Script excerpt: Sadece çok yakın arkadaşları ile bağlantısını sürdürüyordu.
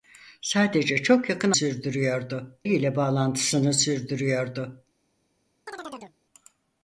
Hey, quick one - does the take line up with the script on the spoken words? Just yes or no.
no